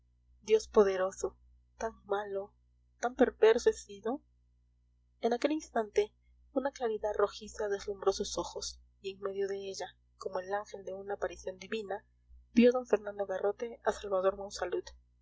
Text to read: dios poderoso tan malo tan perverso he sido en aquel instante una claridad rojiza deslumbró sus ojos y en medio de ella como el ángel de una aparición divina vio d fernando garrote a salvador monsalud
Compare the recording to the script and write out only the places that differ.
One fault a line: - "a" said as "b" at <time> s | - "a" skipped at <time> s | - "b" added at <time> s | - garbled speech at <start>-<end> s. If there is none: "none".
none